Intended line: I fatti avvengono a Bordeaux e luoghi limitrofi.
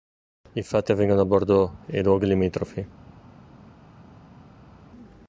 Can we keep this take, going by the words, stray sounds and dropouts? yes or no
yes